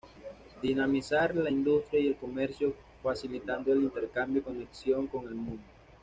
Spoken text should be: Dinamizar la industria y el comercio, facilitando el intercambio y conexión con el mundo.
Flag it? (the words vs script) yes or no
no